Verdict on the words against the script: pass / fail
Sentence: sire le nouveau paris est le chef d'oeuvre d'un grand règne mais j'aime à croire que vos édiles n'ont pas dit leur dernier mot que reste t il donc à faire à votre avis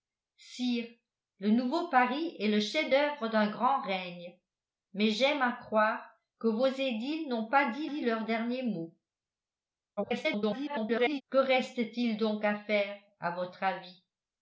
fail